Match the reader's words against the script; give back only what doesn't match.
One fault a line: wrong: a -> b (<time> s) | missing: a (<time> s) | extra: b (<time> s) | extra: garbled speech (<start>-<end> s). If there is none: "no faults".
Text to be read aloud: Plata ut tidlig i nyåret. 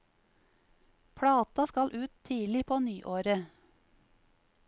extra: skal (1.6 s)
wrong: i -> på (2.6 s)